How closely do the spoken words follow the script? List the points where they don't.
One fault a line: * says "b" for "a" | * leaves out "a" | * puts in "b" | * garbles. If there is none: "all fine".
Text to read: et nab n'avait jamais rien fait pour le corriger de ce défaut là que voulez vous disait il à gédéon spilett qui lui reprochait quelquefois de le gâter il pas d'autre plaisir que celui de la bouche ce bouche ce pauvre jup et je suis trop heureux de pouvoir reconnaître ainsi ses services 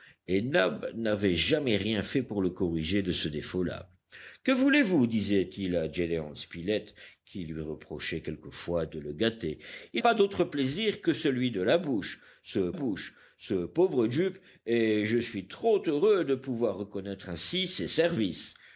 all fine